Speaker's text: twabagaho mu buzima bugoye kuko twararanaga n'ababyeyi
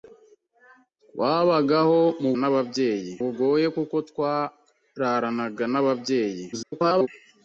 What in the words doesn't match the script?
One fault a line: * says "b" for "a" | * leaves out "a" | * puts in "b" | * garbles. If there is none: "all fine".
* says "n'ababyeyi" for "buzima"
* garbles